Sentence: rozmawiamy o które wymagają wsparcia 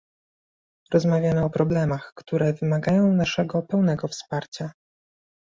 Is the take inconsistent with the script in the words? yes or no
yes